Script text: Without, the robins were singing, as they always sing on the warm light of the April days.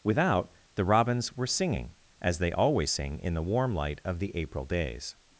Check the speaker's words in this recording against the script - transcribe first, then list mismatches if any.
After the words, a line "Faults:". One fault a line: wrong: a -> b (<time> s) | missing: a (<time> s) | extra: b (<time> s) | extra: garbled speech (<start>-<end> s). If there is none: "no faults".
Without, the robins were singing, as they always sing in the warm light of the April days.
Faults:
wrong: on -> in (3.2 s)